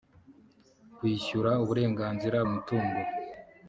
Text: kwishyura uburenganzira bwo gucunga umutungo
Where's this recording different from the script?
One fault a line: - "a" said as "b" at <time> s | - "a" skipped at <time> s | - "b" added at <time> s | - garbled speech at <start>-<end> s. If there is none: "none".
- "bwo gucunga" skipped at 2.4 s